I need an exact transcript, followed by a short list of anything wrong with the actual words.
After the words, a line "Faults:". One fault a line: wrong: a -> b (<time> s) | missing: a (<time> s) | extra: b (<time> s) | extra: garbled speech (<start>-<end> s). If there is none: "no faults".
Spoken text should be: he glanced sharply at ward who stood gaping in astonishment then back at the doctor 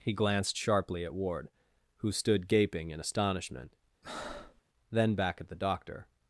he glanced sharply at ward who stood gaping in astonishment then back at the doctor
Faults:
no faults